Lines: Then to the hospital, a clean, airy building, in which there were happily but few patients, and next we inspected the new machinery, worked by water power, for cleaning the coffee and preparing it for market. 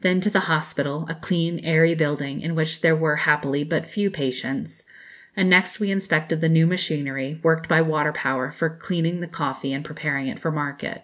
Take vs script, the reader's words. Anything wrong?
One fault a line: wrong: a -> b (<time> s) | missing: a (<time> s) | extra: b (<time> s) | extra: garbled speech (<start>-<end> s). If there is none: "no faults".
no faults